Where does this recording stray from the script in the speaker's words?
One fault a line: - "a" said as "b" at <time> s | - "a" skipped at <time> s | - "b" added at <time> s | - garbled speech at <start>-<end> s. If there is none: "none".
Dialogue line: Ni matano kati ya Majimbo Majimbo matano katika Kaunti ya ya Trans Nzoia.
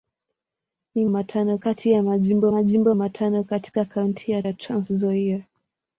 none